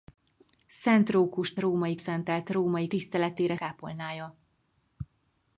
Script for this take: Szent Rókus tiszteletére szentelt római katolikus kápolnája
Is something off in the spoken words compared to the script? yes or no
yes